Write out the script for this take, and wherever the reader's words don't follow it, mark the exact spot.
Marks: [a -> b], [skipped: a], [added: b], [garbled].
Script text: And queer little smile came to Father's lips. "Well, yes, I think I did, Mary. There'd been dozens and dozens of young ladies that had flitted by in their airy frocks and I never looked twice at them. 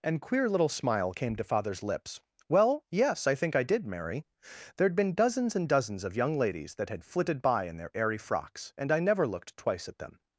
And queer little smile came to Father's lips. "Well, yes, I think I did, Mary. There'd been dozens and dozens of young ladies that had flitted by in their airy frocks and I never looked twice at them.